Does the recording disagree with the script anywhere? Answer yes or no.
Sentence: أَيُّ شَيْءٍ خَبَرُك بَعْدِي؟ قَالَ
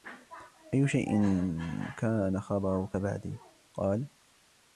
yes